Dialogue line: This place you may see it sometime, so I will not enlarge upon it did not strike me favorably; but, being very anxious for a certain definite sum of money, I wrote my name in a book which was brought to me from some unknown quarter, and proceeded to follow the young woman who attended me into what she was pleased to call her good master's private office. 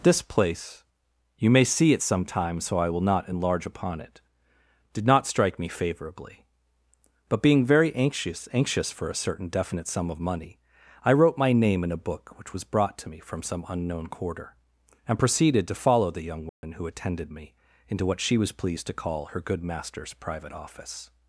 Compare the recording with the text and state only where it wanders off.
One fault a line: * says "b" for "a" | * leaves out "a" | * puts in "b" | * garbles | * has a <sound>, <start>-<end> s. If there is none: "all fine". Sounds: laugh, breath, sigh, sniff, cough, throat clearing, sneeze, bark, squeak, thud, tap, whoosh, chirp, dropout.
* puts in "anxious"
* has a dropout, 16.5-16.6 s